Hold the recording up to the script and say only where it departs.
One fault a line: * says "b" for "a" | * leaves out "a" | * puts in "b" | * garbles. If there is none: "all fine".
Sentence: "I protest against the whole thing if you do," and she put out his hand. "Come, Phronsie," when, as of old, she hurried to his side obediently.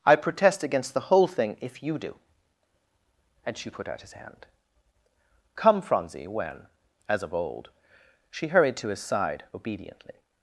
all fine